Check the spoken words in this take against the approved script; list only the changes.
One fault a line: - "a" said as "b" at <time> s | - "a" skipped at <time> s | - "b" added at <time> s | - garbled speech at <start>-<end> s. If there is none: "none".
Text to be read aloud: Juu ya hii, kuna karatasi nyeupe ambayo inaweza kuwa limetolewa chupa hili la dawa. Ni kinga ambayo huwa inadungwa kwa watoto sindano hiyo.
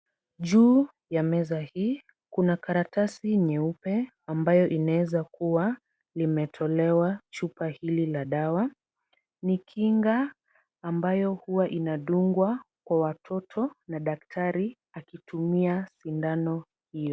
- "meza" added at 1.2 s
- "na daktari akitumia" added at 13.9 s